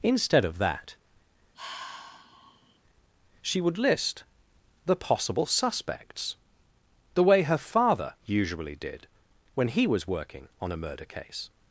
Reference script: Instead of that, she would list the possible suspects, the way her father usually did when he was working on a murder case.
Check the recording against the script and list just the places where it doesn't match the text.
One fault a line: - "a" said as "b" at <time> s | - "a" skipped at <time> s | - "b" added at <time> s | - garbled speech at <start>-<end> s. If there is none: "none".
none